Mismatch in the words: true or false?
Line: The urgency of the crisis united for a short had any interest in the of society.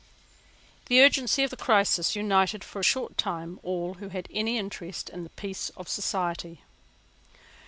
true